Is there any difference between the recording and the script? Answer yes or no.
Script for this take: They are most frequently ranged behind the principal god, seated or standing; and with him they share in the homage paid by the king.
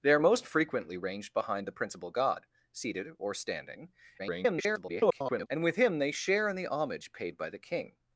yes